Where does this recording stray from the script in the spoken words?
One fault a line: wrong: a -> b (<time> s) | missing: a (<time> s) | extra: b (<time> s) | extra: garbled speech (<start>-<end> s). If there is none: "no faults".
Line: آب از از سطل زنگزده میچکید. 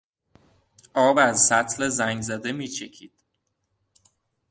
missing: از (1.4 s)